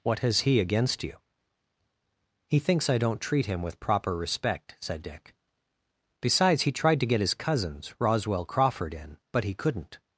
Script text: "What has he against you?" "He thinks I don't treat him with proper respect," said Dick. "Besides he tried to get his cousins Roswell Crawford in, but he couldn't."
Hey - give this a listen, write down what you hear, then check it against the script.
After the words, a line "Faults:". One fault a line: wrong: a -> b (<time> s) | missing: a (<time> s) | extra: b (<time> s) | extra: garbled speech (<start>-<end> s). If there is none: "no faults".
"What has he against you?" "He thinks I don't treat him with proper respect," said Dick. "Besides he tried to get his cousins Roswell Crawford in, but he couldn't."
Faults:
no faults